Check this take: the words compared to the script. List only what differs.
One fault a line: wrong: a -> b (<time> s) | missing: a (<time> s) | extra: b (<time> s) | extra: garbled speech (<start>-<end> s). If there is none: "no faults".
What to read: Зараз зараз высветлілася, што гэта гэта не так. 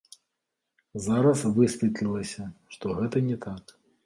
missing: зараз (1.4 s)
missing: гэта (3.2 s)